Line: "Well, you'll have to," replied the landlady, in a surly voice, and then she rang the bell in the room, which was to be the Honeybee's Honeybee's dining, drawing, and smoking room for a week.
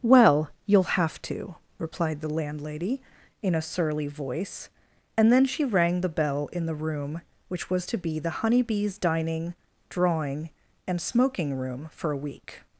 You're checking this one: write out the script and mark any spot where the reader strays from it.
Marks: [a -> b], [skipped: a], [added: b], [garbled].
"Well, you'll have to," replied the landlady, in a surly voice, and then she rang the bell in the room, which was to be the Honeybee's [skipped: Honeybee's] dining, drawing, and smoking room for a week.